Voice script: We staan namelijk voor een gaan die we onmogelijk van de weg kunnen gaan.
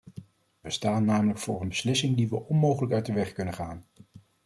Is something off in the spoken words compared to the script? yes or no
yes